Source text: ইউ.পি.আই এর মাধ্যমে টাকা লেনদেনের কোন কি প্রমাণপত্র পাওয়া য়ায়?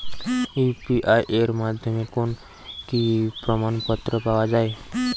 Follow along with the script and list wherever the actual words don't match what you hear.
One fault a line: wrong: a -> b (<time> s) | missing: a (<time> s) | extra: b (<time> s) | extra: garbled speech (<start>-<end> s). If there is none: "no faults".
missing: টাকা লেনদেনের (2.0 s)